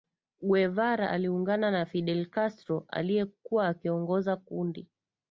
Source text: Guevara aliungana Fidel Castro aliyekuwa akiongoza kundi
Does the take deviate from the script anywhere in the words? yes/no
yes